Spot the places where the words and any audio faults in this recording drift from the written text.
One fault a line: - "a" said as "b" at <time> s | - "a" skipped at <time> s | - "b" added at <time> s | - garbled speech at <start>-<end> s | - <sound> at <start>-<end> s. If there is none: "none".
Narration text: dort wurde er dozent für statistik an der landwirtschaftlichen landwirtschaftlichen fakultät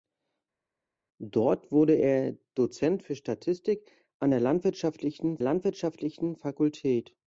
none